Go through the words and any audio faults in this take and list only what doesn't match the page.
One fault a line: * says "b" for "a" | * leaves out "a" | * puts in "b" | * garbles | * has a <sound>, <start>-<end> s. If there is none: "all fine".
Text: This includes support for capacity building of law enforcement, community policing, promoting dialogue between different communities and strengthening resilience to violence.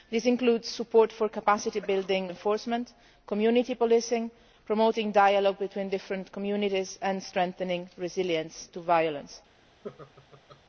* leaves out "of law"
* has a laugh, 9.8-10.6 s